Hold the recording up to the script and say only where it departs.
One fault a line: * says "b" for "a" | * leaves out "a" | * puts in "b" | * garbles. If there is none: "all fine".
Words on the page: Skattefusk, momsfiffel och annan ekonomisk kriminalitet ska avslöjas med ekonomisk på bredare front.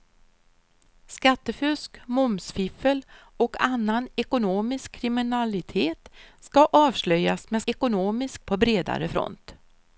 all fine